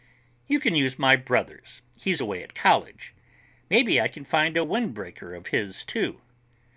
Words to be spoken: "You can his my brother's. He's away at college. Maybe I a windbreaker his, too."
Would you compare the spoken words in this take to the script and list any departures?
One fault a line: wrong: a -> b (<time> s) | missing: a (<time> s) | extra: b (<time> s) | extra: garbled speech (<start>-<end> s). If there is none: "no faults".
wrong: his -> use (0.7 s)
extra: can find (4.1 s)
extra: of (5.3 s)